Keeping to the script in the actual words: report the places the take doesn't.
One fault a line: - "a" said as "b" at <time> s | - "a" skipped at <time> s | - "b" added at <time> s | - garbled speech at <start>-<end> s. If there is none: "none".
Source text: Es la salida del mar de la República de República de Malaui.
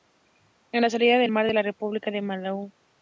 - "del" said as "al" at 1.2 s
- "República de" skipped at 2.2 s